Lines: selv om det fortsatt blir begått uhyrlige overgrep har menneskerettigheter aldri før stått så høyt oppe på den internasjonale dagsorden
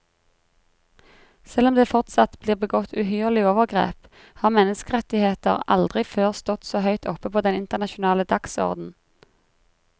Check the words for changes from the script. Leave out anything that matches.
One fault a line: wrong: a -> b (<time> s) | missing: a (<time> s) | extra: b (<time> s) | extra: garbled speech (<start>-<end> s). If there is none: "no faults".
no faults